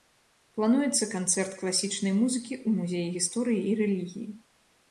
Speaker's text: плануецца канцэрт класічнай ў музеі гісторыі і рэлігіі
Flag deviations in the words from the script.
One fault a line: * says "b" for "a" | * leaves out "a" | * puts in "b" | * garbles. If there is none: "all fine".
* puts in "музыкі"